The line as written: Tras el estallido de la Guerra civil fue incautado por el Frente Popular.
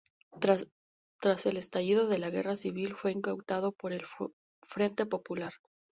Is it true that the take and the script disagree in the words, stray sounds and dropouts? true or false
false